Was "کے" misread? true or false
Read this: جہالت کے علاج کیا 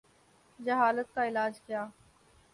true